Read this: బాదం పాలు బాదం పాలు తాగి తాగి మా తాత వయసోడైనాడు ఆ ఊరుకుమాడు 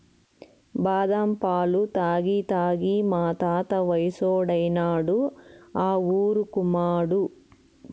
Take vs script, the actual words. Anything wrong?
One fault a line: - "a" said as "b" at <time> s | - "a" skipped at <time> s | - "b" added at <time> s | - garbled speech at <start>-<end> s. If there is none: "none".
- "బాదం పాలు" skipped at 1.8 s